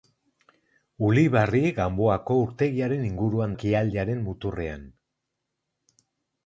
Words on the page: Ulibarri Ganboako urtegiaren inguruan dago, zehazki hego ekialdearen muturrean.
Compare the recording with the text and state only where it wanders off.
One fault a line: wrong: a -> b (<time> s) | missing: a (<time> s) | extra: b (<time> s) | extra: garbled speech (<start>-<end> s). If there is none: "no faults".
missing: dago zehazki hego (3.5 s)